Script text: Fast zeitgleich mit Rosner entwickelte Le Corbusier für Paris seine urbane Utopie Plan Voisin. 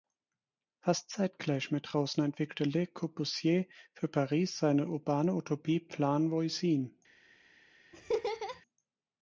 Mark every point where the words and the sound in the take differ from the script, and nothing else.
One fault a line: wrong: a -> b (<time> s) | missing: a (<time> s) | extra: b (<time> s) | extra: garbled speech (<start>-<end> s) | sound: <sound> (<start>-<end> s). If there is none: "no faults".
sound: laugh (7.9-8.6 s)